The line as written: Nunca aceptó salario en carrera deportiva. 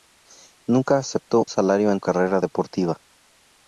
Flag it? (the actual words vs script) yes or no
no